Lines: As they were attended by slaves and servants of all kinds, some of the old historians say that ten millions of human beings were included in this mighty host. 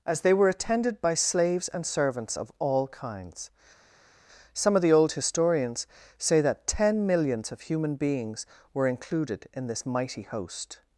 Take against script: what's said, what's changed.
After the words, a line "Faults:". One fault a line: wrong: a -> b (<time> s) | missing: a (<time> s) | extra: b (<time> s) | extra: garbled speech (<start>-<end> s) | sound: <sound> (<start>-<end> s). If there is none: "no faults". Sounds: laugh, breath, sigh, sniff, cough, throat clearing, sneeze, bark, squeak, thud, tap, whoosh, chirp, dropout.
As they were attended by slaves and servants of all kinds, some of the old historians say that ten millions of human beings were included in this mighty host.
Faults:
no faults